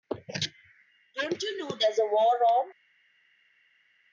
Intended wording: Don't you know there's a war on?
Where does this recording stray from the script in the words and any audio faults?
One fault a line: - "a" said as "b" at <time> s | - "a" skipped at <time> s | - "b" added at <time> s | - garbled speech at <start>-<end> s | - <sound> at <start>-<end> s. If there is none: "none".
none